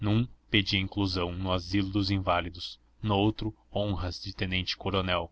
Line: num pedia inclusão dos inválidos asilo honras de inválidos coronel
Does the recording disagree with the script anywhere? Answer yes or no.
yes